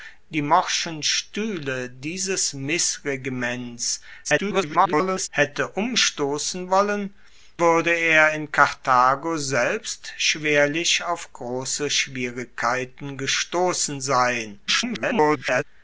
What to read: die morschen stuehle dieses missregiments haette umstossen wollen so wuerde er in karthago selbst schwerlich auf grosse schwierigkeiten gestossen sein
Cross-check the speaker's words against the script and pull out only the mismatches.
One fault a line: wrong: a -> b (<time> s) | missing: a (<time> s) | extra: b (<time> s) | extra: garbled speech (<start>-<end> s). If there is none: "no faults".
extra: garbled speech (4.2-5.3 s)
missing: so (7.1 s)
extra: garbled speech (14.7-15.6 s)